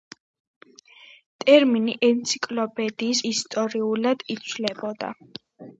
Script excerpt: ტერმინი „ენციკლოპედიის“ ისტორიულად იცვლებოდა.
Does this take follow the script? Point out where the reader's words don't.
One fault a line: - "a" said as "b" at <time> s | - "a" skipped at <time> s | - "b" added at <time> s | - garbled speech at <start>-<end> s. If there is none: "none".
none